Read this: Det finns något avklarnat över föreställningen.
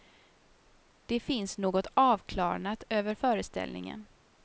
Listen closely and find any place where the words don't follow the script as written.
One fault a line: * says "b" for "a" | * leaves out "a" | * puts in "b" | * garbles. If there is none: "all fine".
all fine